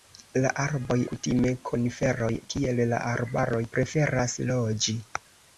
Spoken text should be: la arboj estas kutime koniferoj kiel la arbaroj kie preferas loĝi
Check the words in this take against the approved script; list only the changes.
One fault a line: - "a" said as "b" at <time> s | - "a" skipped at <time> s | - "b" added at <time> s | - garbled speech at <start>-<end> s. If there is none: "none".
- "estas" skipped at 0.9 s
- "kie" skipped at 3.6 s